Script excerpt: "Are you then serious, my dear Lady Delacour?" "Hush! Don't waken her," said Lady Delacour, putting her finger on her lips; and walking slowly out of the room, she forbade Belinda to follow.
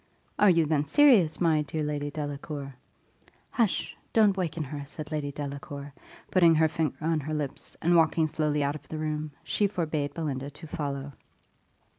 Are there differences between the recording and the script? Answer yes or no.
no